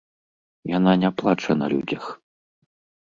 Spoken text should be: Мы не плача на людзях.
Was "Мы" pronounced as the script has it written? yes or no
no